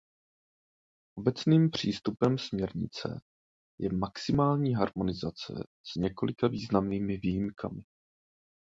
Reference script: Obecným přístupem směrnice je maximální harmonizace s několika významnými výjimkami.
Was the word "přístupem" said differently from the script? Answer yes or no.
no